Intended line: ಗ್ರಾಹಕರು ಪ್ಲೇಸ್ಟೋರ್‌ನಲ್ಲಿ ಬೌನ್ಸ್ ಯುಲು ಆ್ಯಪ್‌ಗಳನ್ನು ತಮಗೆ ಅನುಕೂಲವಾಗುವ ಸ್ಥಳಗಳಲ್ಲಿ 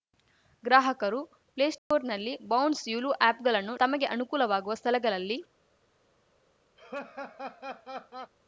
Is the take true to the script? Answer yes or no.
yes